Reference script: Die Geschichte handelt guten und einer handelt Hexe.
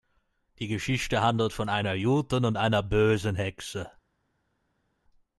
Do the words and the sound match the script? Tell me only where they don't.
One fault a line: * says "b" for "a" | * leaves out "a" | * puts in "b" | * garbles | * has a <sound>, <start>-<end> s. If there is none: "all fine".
* puts in "von einer"
* says "bösen" for "handelt"